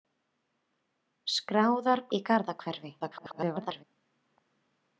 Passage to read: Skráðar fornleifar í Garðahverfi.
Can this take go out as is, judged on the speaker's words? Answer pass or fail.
fail